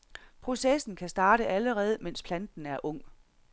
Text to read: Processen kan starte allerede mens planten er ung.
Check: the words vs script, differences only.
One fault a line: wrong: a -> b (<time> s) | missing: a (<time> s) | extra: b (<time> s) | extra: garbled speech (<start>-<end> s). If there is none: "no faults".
no faults